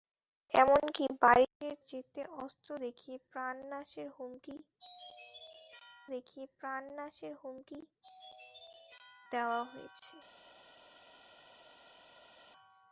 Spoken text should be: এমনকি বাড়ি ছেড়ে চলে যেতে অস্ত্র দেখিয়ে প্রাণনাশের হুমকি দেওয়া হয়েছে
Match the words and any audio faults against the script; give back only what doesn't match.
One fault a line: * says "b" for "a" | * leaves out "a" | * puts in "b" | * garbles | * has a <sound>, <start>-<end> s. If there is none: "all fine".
* leaves out "চলে"
* puts in "দেখিয়ে প্রাণনাশের হুমকি"